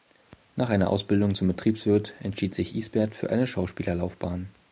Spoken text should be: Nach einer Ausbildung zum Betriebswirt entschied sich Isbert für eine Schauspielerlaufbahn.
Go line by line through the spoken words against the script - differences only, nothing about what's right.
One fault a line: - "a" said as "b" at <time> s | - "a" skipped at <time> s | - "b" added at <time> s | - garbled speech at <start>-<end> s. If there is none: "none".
none